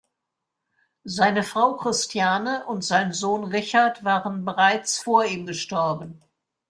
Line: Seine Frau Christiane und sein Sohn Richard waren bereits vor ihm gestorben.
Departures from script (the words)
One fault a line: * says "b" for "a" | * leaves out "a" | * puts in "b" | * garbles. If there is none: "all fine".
all fine